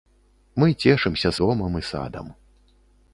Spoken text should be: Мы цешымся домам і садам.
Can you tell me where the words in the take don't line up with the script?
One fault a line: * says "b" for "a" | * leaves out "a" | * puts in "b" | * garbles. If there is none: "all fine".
all fine